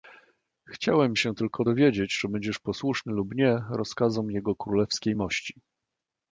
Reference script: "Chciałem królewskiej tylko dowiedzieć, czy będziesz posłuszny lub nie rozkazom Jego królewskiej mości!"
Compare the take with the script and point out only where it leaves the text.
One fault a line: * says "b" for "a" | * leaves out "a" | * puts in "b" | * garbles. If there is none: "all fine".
* says "się" for "królewskiej"